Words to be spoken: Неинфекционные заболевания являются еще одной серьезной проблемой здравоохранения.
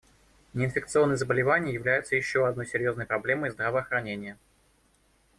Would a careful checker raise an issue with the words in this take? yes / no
no